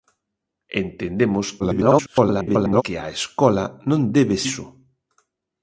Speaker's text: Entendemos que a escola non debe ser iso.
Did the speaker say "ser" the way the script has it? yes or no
no